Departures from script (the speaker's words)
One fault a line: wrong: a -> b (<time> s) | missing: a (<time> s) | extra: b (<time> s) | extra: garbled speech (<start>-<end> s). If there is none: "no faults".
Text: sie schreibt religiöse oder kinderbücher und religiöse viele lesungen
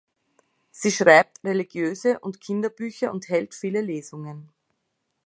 wrong: oder -> und (2.2 s)
wrong: religiöse -> hält (3.3 s)